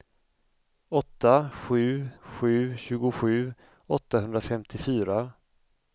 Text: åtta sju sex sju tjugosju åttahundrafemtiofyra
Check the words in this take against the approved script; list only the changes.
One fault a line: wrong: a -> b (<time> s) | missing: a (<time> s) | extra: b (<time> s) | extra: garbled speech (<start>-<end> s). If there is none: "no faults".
missing: sex (2.1 s)